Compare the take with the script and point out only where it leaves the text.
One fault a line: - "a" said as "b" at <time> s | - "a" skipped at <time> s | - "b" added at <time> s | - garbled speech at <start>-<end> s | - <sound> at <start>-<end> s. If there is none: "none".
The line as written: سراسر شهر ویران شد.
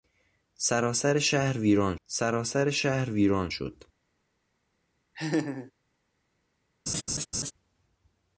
- "سراسر شهر ویران" added at 2.0 s
- laugh at 5.1-5.7 s
- laugh at 6.9-7.5 s